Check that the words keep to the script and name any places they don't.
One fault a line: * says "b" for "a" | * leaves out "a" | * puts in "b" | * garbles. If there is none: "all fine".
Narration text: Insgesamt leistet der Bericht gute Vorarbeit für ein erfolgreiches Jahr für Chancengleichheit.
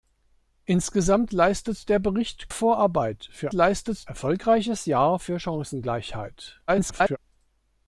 * leaves out "gute"
* says "leistet" for "ein"
* garbles